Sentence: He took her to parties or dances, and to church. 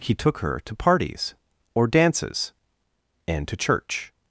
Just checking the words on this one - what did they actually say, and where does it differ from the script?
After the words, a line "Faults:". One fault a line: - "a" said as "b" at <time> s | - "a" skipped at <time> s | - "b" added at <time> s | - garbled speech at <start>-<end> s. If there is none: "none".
He took her to parties or dances, and to church.
Faults:
none